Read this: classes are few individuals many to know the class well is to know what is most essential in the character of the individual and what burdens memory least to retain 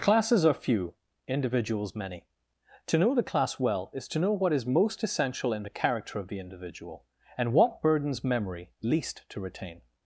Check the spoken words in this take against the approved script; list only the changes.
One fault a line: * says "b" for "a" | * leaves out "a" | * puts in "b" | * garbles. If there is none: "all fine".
all fine